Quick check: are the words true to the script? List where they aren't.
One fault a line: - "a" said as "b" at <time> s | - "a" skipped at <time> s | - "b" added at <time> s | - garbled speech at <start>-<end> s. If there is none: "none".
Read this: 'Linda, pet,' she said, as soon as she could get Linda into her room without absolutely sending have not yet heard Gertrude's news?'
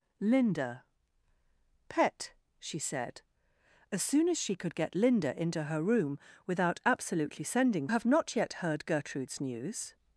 none